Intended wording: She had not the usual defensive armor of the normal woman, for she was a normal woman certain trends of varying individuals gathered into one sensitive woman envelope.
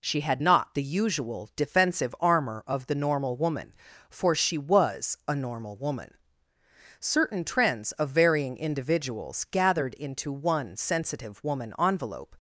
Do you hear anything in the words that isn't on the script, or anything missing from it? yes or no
no